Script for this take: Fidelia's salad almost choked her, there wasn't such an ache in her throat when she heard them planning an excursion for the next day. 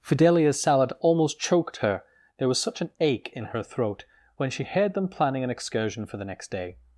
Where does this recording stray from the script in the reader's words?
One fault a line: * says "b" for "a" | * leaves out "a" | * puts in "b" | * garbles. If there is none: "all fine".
* says "was" for "wasn't"